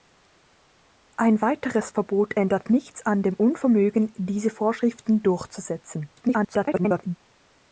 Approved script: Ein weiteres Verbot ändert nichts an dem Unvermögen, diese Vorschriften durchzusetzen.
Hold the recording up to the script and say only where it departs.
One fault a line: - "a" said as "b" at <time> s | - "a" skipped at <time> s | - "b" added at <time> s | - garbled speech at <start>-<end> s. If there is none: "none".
- garbled speech at 6.2-7.2 s